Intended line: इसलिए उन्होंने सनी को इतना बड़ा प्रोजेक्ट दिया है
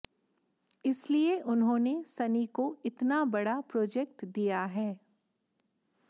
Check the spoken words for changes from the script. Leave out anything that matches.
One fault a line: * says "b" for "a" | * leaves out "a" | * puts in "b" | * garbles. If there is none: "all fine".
all fine